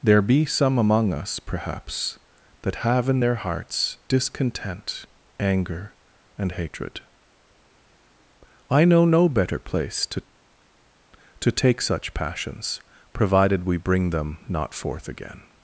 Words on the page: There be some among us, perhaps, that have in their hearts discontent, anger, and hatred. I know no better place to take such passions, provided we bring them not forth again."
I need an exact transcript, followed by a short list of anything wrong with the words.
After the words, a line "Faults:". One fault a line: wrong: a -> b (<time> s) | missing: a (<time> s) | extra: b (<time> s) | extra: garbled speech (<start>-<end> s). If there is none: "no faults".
There be some among us, perhaps, that have in their hearts discontent, anger, and hatred. I know no better place to to take such passions, provided we bring them not forth again."
Faults:
extra: to (11.4 s)